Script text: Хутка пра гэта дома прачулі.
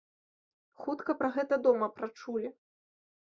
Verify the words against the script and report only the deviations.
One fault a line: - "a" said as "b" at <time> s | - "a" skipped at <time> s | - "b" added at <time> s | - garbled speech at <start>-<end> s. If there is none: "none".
none